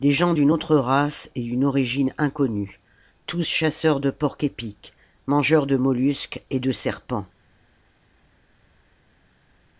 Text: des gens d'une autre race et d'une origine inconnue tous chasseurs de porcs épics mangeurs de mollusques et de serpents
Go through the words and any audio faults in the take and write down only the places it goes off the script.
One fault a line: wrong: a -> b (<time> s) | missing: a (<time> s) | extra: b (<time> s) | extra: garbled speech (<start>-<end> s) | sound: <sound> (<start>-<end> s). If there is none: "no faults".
no faults